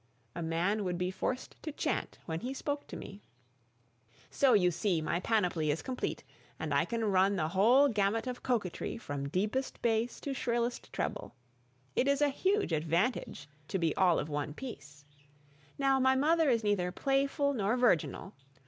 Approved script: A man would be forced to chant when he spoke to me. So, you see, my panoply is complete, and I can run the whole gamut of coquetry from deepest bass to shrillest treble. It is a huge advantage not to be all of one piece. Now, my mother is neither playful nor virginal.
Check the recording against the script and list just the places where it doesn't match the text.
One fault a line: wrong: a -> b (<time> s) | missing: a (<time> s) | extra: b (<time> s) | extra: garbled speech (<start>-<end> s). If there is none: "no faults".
missing: not (13.5 s)